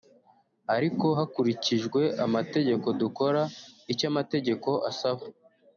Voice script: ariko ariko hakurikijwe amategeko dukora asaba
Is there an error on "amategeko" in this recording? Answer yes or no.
no